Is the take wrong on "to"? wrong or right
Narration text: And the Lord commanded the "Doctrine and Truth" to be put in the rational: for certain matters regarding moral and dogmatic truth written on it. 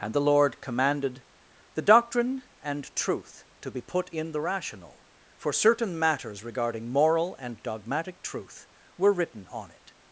right